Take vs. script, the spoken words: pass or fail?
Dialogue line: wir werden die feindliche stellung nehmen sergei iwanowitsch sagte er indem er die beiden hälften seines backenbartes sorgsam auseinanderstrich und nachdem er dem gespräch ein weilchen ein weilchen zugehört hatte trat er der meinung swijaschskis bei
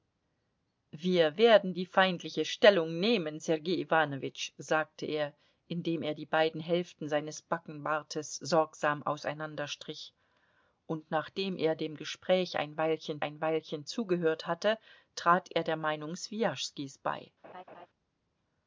pass